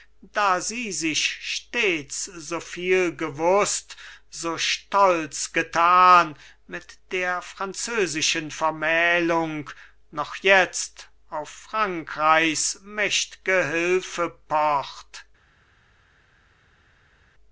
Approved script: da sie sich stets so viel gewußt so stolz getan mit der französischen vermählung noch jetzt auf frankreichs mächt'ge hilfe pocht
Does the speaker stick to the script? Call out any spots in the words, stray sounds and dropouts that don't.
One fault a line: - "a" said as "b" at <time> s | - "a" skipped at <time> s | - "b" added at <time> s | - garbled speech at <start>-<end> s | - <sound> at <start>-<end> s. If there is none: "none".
none